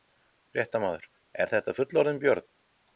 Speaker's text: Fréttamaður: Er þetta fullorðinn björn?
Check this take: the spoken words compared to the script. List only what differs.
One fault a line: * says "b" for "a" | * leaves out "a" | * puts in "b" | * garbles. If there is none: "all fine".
all fine